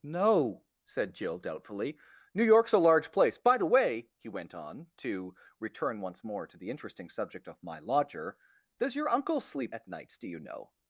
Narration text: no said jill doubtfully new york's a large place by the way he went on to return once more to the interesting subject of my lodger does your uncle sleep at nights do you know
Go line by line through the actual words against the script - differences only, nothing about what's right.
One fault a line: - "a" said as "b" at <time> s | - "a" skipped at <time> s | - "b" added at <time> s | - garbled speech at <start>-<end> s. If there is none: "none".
none